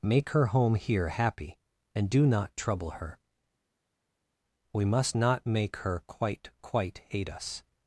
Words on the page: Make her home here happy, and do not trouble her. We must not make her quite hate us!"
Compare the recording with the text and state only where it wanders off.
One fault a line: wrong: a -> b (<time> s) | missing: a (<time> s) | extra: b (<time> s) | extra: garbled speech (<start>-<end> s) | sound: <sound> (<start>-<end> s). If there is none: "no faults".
extra: quite (6.6 s)